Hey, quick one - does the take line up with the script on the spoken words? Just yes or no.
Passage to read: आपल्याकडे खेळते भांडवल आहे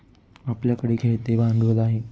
yes